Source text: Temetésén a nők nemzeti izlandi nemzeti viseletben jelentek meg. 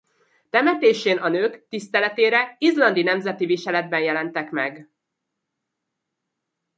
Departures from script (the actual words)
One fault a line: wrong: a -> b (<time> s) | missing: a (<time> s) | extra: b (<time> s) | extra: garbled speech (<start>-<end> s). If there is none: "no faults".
wrong: nemzeti -> tiszteletére (1.7 s)